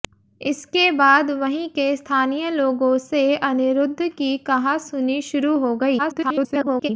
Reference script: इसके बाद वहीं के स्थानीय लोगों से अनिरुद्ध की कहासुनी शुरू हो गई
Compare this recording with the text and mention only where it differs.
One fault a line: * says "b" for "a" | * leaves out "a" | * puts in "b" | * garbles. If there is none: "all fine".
* garbles